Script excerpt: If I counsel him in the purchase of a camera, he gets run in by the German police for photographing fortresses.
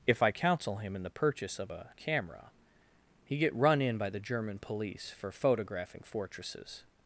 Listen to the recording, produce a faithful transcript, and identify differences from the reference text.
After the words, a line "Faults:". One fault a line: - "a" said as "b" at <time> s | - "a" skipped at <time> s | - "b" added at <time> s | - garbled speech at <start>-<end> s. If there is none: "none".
If I counsel him in the purchase of a camera, he get run in by the German police for photographing fortresses.
Faults:
- "gets" said as "get" at 3.4 s